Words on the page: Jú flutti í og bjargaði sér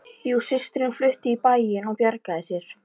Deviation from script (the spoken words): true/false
true